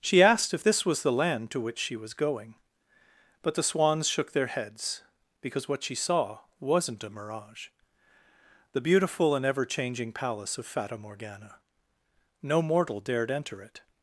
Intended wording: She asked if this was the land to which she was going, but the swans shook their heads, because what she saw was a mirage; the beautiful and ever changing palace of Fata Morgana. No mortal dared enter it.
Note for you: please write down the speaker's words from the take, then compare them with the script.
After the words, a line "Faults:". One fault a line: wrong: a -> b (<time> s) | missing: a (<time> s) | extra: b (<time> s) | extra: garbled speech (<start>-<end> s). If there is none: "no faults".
She asked if this was the land to which she was going, but the swans shook their heads, because what she saw wasn't a mirage; the beautiful and ever changing palace of Fata Morgana. No mortal dared enter it.
Faults:
wrong: was -> wasn't (6.6 s)